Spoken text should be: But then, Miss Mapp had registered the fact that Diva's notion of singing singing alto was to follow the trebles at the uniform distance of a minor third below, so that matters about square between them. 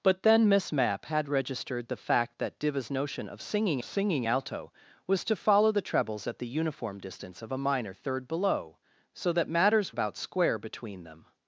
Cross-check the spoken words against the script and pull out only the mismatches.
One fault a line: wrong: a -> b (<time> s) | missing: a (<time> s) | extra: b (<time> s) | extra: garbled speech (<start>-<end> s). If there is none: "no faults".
no faults